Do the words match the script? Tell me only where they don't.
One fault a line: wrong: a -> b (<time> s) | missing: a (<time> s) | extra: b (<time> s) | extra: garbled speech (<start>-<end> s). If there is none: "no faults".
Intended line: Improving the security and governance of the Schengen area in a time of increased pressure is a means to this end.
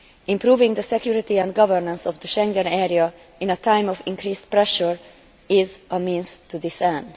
no faults